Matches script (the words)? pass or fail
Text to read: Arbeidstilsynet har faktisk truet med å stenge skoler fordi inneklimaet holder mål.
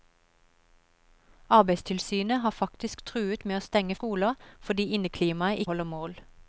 pass